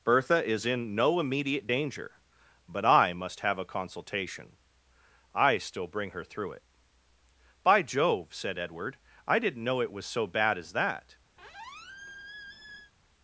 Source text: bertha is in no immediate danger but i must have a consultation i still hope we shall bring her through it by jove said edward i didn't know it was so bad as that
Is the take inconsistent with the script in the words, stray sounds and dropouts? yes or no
yes